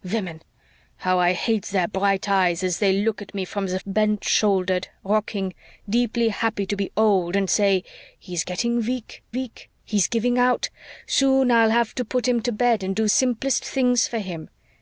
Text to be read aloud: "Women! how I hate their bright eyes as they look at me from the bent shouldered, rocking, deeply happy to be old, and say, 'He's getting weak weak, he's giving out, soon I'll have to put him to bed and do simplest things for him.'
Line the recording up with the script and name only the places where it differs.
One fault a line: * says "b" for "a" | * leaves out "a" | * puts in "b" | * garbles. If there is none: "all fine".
all fine